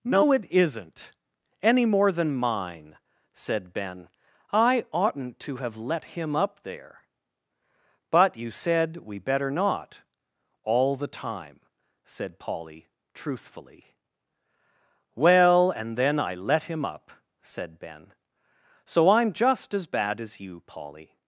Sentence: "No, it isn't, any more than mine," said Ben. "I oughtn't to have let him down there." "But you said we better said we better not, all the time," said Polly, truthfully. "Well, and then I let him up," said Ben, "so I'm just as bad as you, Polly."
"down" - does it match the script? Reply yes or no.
no